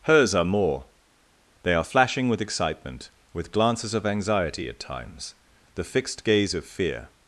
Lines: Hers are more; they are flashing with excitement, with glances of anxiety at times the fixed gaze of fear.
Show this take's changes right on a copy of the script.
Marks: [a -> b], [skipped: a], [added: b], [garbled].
Hers are more; they are flashing with excitement, with glances of anxiety at times the fixed gaze of fear.